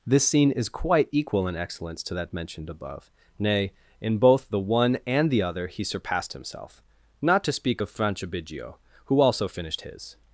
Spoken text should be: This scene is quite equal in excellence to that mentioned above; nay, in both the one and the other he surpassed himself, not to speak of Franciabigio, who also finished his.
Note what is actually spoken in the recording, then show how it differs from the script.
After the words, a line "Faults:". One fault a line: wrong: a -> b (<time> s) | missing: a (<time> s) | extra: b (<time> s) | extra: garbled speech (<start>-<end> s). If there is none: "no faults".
This scene is quite equal in excellence to that mentioned above; nay, in both the one and the other he surpassed himself, not to speak of Franciabigio, who also finished his.
Faults:
no faults